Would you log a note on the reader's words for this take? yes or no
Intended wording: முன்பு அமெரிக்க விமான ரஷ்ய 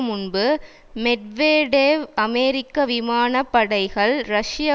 yes